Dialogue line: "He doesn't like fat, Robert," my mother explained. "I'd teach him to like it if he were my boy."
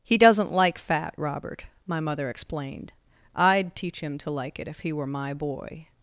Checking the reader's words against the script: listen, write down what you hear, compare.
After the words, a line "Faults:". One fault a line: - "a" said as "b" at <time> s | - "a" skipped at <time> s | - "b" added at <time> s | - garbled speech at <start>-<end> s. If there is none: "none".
"He doesn't like fat, Robert," my mother explained. "I'd teach him to like it if he were my boy."
Faults:
none